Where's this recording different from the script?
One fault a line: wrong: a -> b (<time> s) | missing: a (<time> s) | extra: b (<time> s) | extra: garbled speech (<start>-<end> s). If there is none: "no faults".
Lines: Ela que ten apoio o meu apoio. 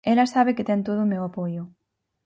extra: sabe (0.2 s)
wrong: apoio -> todo (0.9 s)